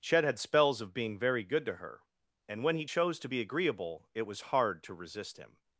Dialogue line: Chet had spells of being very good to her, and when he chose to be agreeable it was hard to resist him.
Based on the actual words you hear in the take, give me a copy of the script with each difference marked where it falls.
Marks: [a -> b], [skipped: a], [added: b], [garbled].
Chet had spells of being very good to her, and when he chose to be agreeable it was hard to resist him.